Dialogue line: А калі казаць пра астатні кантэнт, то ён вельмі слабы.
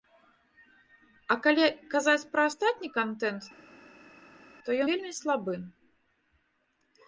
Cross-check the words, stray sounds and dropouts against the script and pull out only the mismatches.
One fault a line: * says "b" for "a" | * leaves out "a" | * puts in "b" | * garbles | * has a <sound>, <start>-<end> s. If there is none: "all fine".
* leaves out "ён"